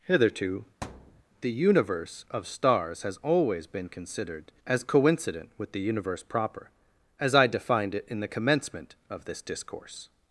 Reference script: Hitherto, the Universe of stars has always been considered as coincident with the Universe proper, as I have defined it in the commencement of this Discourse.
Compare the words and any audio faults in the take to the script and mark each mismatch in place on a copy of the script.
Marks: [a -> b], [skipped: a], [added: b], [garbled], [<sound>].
Hitherto, [thud] the Universe of stars has always been considered as coincident with the Universe proper, as I [skipped: have] defined it in the commencement of this Discourse.